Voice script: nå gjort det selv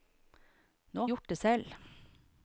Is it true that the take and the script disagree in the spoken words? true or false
false